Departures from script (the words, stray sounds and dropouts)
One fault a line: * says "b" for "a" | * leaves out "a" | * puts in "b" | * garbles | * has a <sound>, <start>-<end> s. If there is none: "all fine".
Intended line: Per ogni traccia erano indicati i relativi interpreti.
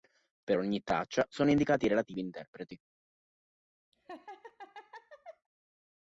* says "sono" for "erano"
* has a laugh, 3.9-5.5 s